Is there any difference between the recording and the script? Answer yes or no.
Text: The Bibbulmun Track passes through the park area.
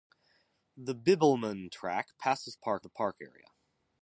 yes